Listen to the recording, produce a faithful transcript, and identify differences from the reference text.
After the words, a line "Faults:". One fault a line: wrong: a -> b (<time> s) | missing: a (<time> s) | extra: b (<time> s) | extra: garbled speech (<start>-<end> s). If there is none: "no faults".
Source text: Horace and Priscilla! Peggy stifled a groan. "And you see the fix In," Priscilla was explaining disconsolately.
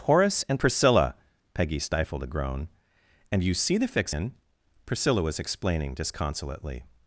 Horace and Priscilla! Peggy stifled a groan. "And you see the fix In," Priscilla was explaining disconsolately.
Faults:
no faults